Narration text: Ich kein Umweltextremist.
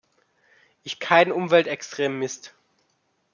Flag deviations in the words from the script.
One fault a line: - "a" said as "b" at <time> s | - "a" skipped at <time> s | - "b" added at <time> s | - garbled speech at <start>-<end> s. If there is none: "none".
none